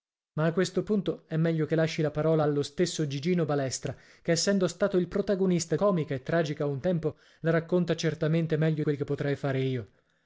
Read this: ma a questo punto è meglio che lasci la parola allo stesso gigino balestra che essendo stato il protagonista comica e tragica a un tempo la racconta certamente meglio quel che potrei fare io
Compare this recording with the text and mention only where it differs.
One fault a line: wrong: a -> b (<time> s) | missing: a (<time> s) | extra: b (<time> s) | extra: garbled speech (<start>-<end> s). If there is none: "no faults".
no faults